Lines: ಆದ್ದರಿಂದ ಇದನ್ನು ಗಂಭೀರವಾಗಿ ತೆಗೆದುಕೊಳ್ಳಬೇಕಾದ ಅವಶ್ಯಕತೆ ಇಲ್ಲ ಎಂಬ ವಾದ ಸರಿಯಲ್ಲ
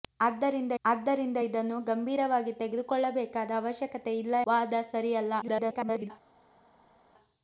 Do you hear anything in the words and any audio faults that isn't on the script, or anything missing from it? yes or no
yes